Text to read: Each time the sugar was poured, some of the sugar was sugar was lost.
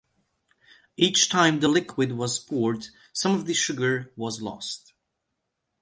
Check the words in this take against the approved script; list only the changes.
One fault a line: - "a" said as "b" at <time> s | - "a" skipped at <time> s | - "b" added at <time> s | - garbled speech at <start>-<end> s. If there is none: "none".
- "sugar" said as "liquid" at 1.7 s
- "sugar was" skipped at 4.4 s